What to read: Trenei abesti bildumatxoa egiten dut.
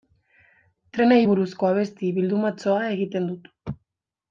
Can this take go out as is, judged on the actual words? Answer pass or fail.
fail